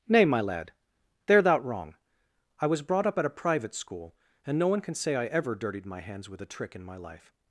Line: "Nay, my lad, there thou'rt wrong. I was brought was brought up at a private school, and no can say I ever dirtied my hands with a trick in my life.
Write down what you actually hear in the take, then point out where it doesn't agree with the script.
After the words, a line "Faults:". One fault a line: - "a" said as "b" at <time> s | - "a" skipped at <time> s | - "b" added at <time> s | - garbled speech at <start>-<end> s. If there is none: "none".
"Nay, my lad, there thou'rt wrong. I was brought up at a private school, and no one can say I ever dirtied my hands with a trick in my life.
Faults:
- "was brought" skipped at 3.0 s
- "one" added at 4.7 s